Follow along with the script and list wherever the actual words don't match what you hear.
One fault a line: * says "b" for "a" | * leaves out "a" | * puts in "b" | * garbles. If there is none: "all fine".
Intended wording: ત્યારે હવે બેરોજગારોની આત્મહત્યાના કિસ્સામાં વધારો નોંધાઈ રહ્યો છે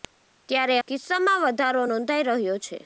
* leaves out "હવે બેરોજગારોની આત્મહત્યાના"